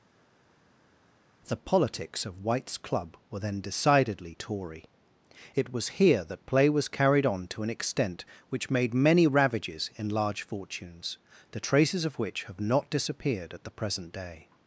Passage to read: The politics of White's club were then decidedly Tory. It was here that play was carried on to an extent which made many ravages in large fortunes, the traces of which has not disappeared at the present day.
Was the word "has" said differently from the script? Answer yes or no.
yes